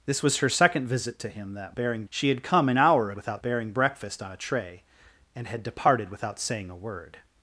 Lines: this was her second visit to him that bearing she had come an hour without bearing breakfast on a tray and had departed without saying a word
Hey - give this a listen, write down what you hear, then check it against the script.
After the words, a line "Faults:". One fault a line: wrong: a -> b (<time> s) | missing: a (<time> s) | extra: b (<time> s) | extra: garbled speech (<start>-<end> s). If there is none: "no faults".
this was her second visit to him that bearing she had come an hour without bearing breakfast on a tray and had departed without saying a word
Faults:
no faults